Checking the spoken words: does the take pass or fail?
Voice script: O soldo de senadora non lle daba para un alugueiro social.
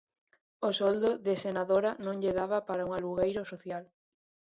pass